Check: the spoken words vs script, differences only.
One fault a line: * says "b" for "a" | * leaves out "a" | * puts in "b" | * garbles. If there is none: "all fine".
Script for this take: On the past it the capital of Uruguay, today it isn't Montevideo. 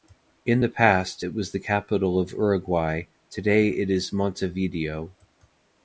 * says "In" for "On"
* puts in "was"
* says "is" for "isn't"